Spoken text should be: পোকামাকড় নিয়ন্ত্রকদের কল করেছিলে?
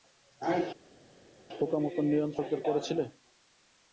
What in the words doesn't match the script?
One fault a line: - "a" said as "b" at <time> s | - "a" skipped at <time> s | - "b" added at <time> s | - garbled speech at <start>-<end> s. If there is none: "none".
- "কল" skipped at 2.6 s